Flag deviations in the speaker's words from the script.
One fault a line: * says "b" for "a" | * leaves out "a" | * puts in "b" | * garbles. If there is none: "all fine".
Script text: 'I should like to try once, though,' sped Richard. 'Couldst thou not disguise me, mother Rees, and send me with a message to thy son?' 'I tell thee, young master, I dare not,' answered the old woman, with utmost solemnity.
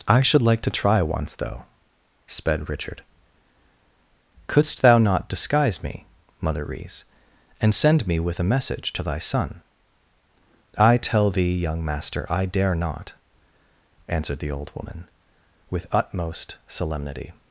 all fine